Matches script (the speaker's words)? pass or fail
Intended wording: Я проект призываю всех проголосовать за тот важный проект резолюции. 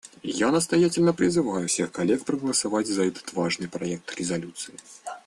fail